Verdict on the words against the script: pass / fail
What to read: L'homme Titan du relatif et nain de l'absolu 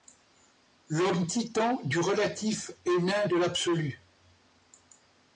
pass